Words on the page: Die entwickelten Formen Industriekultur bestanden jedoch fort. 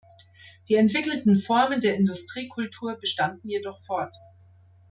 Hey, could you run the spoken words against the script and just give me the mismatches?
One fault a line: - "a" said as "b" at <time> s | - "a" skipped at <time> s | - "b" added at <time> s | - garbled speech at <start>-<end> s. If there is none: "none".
- "der" added at 1.8 s